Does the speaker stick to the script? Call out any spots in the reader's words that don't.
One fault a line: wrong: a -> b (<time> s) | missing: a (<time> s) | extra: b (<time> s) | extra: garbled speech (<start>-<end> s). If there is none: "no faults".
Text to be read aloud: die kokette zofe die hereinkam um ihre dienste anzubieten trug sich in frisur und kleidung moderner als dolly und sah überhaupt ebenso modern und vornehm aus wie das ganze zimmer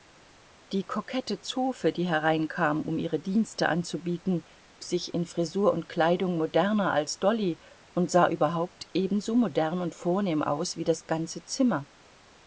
missing: trug (4.4 s)